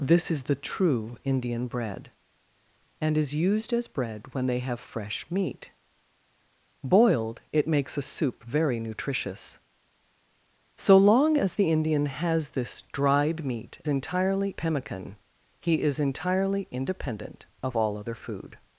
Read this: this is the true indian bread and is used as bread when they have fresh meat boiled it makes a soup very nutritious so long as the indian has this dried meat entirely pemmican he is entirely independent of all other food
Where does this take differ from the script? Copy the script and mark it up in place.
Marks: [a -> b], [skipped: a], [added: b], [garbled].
this is the true indian bread and is used as bread when they have fresh meat boiled it makes a soup very nutritious so long as the indian has this dried meat entirely pemmican he is entirely independent of all other food